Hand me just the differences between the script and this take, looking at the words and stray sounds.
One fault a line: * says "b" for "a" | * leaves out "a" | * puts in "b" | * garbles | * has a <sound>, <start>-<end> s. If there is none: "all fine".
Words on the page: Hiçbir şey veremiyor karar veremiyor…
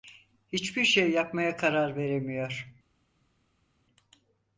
* says "yapmaya" for "veremiyor"